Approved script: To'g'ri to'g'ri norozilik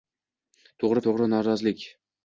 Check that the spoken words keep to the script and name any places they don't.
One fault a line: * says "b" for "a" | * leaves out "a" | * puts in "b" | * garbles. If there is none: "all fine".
all fine